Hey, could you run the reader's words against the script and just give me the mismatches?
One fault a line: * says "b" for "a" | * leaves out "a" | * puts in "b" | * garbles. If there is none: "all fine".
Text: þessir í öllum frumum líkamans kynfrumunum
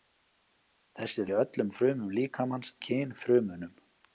all fine